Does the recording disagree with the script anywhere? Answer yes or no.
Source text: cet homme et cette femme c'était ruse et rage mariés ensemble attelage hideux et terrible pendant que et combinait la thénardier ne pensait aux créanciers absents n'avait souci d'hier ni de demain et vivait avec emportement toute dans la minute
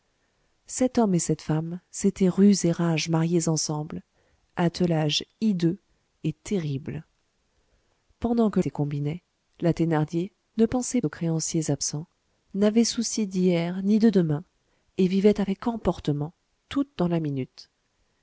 no